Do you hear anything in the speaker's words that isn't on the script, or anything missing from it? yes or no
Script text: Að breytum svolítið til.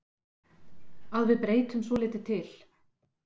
yes